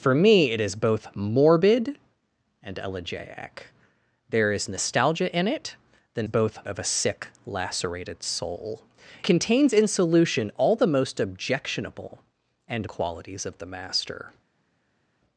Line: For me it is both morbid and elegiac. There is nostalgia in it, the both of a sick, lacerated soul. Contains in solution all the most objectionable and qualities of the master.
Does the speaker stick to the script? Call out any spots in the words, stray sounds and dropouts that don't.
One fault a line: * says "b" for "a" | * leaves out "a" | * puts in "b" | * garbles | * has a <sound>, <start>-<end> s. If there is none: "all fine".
all fine